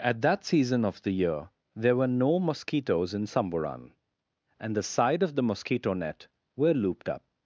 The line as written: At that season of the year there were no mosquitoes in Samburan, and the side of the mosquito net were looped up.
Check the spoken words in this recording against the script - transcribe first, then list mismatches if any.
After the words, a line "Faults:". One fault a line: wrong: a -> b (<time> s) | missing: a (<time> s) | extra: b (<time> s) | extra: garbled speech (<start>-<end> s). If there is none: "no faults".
At that season of the year there were no mosquitoes in Samburan, and the side of the mosquito net were looped up.
Faults:
no faults